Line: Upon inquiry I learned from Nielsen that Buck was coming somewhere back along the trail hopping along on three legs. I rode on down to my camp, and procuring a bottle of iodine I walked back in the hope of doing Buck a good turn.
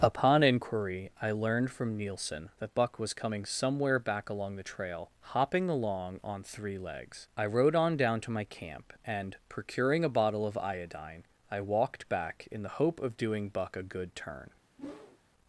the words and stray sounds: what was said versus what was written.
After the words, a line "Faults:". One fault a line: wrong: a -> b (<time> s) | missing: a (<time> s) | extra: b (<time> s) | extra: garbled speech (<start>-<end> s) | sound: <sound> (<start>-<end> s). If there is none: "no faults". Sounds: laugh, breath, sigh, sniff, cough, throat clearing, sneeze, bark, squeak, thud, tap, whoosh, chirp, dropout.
Upon inquiry I learned from Nielsen that Buck was coming somewhere back along the trail hopping along on three legs. I rode on down to my camp, and procuring a bottle of iodine I walked back in the hope of doing Buck a good turn.
Faults:
sound: whoosh (14.8-15.2 s)